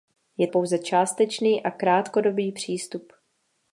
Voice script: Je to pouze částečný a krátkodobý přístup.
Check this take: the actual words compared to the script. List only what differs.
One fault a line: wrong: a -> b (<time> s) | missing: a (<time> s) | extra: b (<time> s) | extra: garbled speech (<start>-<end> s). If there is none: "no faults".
missing: to (0.5 s)